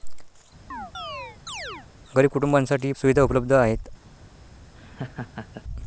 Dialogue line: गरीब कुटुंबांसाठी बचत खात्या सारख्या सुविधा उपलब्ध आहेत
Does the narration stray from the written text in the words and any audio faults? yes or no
yes